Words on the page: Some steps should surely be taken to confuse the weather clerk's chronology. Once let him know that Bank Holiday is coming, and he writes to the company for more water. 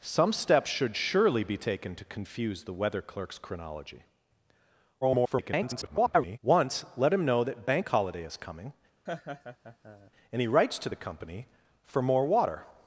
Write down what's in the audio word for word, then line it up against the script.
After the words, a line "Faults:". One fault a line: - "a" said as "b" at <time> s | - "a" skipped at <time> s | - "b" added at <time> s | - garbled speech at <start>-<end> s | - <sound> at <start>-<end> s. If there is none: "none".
Some steps should surely be taken to confuse the weather clerk's chronology. [garbled] Once let him know that Bank Holiday is coming, and he writes to the company for more water.
Faults:
- garbled speech at 5.0-6.4 s
- laugh at 9.1-10.1 s